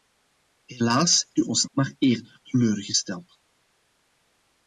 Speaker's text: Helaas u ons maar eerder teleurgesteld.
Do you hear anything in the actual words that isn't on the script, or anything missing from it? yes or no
no